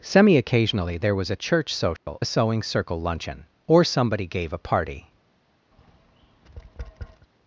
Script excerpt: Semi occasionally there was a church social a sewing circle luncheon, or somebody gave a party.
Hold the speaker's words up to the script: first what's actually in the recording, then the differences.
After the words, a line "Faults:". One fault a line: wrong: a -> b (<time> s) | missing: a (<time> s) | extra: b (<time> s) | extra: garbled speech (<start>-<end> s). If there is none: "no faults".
Semi occasionally there was a church social a sewing circle luncheon, or somebody gave a party.
Faults:
no faults